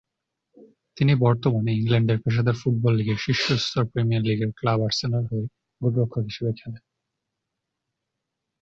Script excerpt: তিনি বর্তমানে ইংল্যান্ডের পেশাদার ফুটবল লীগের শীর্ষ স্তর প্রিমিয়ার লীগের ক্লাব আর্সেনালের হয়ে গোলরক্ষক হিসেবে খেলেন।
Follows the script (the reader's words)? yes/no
yes